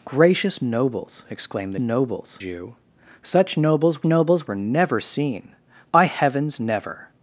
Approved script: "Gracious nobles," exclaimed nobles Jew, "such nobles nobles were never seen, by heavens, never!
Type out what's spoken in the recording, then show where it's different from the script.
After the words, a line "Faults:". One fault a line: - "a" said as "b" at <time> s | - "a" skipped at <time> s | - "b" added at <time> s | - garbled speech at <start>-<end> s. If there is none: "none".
"Gracious nobles," exclaimed nobles Jew, "such nobles nobles were never seen, by heavens, never!
Faults:
none